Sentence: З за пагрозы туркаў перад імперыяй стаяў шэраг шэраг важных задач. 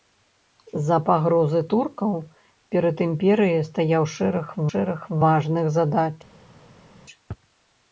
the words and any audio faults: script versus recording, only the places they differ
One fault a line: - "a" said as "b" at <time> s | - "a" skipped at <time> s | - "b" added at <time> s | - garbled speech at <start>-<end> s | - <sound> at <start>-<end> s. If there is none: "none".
none